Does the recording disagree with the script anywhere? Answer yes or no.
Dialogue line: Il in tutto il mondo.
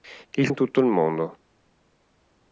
no